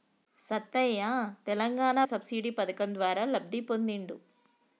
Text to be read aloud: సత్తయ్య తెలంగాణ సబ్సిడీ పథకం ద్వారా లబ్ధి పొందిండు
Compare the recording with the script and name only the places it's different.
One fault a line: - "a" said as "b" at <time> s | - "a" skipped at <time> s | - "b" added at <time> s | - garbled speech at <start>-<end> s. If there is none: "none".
none